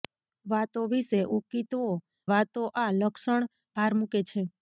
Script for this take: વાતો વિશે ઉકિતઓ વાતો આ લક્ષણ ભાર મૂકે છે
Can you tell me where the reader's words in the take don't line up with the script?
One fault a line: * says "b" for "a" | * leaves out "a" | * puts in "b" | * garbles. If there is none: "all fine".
all fine